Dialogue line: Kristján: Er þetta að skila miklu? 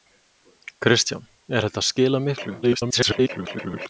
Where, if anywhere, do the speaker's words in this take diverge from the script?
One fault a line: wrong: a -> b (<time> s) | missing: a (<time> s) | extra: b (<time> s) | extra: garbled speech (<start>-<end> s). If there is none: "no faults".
extra: garbled speech (2.6-3.9 s)